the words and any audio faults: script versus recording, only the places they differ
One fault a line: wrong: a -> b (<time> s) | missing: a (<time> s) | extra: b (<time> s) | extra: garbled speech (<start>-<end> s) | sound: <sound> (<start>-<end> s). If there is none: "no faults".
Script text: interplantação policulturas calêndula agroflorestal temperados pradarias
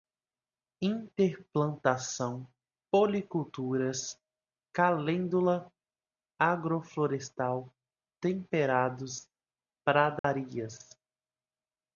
sound: dropout (10.2-10.2 s)